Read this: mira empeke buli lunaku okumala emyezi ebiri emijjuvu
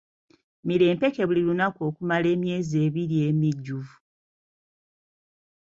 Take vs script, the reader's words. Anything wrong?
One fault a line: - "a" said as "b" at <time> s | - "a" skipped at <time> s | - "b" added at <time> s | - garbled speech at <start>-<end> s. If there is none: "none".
none